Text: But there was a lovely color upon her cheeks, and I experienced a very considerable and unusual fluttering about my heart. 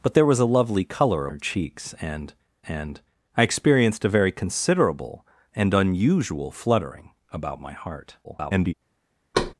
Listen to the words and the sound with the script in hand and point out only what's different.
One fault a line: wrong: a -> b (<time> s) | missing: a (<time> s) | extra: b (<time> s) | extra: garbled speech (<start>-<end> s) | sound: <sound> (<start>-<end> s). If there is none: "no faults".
missing: upon (1.3 s)
extra: and (2.7 s)
extra: garbled speech (8.2-8.7 s)
sound: thud (9.3-9.5 s)